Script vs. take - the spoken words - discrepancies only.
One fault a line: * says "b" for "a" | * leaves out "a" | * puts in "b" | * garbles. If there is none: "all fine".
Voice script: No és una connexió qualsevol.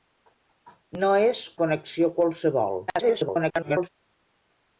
* leaves out "una"
* garbles